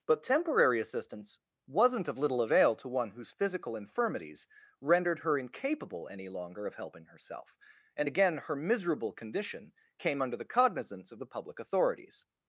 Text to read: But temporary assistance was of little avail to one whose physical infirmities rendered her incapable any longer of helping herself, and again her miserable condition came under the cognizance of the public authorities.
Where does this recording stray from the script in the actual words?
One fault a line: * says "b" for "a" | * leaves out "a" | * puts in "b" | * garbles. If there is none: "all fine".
* says "wasn't" for "was"